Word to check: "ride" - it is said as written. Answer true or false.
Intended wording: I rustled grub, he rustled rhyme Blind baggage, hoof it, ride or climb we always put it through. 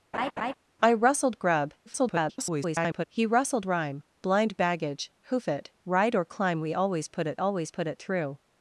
true